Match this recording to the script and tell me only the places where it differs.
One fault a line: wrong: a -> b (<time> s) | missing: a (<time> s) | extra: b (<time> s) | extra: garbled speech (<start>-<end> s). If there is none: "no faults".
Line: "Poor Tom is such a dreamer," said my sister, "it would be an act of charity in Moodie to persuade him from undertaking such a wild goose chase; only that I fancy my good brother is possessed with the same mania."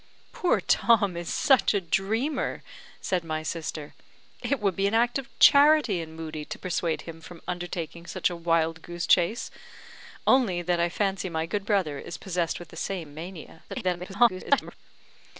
extra: garbled speech (13.7-14.7 s)